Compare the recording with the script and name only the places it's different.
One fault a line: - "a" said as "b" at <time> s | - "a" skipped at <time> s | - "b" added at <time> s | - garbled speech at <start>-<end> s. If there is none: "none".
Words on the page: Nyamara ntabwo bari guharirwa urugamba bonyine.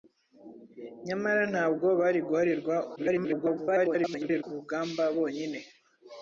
- garbled speech at 3.0-4.4 s